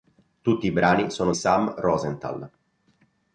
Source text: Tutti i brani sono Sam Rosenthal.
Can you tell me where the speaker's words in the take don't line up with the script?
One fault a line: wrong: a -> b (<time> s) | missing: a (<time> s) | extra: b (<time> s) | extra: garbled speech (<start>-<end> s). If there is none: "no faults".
no faults